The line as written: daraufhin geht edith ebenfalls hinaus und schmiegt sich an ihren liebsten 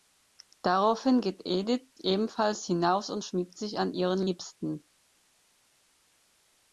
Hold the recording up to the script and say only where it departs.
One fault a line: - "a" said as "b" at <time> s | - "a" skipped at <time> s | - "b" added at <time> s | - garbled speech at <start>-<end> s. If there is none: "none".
none